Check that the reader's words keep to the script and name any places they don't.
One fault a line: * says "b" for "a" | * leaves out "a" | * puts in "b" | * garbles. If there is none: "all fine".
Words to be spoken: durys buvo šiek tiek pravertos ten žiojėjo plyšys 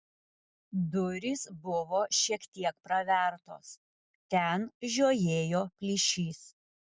all fine